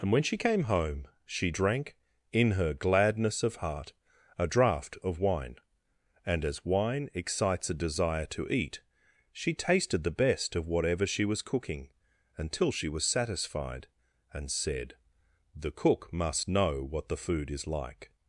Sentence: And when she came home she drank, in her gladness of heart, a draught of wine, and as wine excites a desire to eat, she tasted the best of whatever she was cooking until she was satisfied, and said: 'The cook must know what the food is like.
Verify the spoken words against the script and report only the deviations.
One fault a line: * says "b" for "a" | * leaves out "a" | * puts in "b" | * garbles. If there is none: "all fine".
all fine